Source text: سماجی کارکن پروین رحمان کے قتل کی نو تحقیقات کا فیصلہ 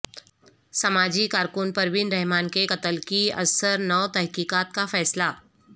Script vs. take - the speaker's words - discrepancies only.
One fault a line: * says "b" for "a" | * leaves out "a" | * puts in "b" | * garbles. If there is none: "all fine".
* puts in "ازسر"